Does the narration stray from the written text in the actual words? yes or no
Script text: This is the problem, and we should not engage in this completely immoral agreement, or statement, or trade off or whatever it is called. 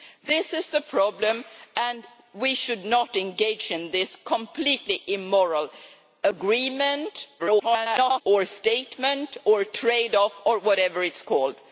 yes